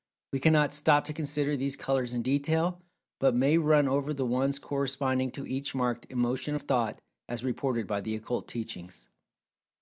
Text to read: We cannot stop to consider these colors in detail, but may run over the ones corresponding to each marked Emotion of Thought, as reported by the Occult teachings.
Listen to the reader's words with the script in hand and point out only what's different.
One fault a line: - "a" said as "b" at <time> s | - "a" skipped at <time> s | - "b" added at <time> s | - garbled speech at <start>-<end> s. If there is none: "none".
none